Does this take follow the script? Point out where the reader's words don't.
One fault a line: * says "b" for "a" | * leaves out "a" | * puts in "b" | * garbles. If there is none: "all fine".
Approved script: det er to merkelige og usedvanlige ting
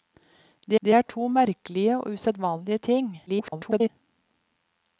* puts in "det"
* garbles